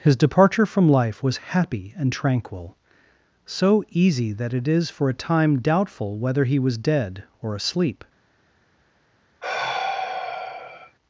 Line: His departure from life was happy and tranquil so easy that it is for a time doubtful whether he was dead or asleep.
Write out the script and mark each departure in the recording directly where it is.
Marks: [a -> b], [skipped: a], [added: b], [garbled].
His departure from life was happy and tranquil so easy that it is for a time doubtful whether he was dead or asleep.